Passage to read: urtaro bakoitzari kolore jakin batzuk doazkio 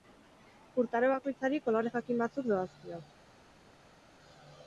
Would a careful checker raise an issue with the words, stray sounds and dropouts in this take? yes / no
no